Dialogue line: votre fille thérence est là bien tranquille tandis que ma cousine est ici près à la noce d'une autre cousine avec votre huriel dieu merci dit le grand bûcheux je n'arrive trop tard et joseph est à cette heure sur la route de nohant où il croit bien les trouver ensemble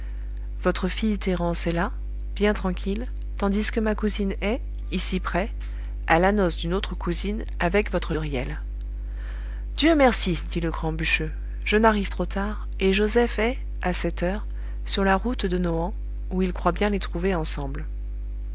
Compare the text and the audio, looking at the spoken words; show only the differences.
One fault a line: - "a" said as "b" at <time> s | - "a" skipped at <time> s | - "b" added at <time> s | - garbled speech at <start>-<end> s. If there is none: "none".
none